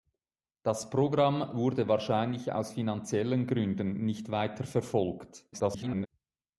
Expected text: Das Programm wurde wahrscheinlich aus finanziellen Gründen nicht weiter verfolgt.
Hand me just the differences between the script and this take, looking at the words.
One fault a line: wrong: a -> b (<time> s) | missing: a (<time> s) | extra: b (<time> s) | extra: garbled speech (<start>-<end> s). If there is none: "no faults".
extra: garbled speech (5.5-6.1 s)